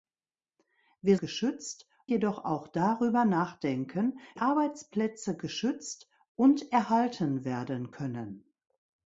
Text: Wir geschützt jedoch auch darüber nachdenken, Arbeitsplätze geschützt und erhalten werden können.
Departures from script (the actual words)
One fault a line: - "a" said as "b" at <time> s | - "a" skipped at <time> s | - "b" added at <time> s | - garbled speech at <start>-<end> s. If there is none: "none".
none